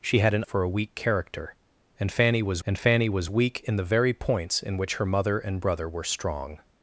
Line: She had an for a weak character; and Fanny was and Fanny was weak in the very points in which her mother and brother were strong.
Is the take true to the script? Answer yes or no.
yes